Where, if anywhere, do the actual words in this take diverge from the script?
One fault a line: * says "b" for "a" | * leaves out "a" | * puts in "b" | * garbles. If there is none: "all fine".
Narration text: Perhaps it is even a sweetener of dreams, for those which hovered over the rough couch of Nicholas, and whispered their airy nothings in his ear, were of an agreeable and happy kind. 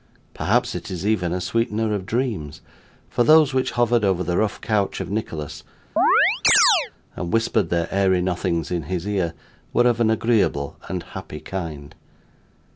all fine